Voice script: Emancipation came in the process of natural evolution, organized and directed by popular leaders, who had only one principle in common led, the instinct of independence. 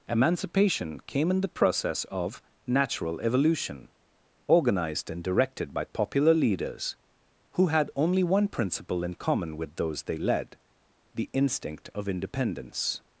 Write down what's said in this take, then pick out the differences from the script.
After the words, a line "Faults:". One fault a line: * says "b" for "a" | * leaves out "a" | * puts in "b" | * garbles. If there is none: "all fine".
Emancipation came in the process of natural evolution, organized and directed by popular leaders, who had only one principle in common with those they led, the instinct of independence.
Faults:
* puts in "with those they"